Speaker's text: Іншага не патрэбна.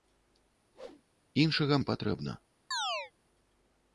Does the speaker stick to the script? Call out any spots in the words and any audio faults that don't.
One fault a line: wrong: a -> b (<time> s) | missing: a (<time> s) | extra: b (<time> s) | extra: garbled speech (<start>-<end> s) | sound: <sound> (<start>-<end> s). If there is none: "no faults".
sound: whoosh (0.7-1.0 s)
sound: chirp (2.7-3.1 s)